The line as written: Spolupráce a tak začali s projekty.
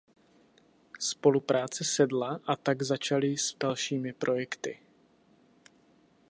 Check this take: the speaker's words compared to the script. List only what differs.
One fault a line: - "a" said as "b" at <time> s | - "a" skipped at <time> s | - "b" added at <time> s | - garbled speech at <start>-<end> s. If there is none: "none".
- "sedla" added at 1.8 s
- "dalšími" added at 3.6 s